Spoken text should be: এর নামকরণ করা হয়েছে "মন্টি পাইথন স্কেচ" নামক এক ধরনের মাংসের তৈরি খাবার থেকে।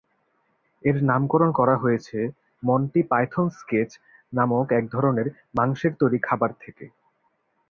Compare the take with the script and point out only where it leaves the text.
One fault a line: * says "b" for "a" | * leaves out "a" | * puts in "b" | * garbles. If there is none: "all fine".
all fine